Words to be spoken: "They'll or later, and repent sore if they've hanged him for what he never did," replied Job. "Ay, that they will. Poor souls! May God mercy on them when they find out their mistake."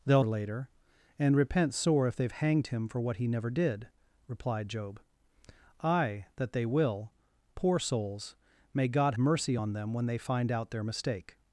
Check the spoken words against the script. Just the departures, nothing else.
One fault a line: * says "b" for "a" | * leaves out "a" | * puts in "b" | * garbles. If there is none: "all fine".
all fine